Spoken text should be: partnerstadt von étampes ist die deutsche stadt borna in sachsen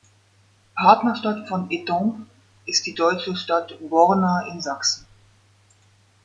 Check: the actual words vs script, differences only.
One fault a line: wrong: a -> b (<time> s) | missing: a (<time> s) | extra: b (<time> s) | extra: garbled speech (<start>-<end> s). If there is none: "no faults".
no faults